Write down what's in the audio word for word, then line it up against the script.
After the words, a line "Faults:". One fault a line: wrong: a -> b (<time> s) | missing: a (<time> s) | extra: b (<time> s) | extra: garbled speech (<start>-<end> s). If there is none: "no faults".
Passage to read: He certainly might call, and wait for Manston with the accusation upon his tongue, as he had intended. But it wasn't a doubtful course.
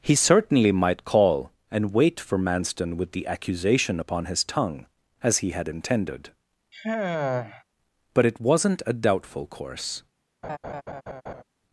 He certainly might call, and wait for Manston with the accusation upon his tongue, as he had intended. But it wasn't a doubtful course.
Faults:
no faults